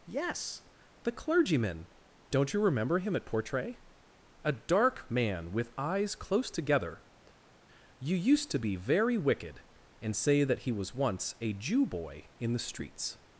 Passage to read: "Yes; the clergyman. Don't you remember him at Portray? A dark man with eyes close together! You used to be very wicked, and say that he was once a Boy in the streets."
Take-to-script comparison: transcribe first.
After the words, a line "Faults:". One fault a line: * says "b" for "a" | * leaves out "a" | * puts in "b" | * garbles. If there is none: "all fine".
"Yes; the clergyman. Don't you remember him at Portray? A dark man with eyes close together! You used to be very wicked, and say that he was once a Jew boy in the streets."
Faults:
* puts in "Jew"